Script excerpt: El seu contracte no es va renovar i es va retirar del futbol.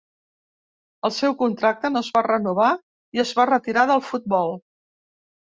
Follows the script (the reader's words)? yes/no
yes